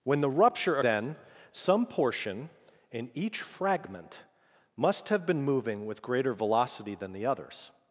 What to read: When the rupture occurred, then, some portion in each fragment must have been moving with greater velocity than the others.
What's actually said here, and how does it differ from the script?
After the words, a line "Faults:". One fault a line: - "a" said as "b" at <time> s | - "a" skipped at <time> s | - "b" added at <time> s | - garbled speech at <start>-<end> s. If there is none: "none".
When the rupture then, some portion in each fragment must have been moving with greater velocity than the others.
Faults:
- "occurred" skipped at 0.8 s